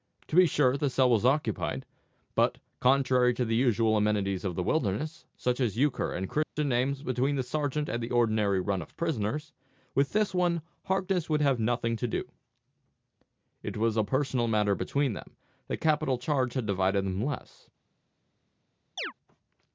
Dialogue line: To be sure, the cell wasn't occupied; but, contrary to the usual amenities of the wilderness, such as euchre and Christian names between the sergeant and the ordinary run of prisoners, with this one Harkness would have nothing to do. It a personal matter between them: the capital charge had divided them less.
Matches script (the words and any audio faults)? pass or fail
fail